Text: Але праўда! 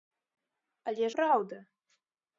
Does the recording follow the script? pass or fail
pass